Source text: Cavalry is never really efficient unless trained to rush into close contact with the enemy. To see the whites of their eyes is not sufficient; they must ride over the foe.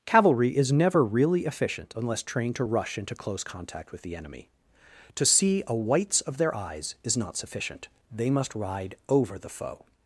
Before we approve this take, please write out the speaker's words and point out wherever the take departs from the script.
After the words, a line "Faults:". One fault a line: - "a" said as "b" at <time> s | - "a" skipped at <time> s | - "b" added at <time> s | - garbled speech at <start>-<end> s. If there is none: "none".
Cavalry is never really efficient unless trained to rush into close contact with the enemy. To see a whites of their eyes is not sufficient; they must ride over the foe.
Faults:
- "the" said as "a" at 5.7 s